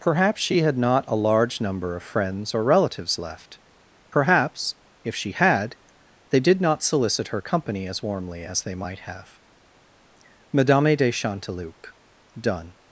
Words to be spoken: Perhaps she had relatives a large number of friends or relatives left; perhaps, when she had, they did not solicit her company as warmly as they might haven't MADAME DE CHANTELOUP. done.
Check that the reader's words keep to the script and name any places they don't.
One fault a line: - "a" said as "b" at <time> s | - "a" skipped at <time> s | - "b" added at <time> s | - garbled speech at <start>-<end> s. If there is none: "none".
- "relatives" said as "not" at 0.8 s
- "when" said as "if" at 5.0 s
- "haven't" said as "have" at 9.0 s